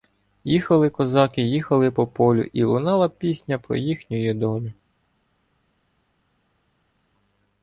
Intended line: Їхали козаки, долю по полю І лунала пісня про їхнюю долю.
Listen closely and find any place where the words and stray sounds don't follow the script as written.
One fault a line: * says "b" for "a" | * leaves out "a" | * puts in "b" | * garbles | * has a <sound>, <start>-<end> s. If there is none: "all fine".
* says "їхали" for "долю"